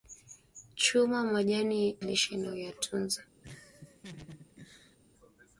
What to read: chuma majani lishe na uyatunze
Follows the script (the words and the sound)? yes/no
no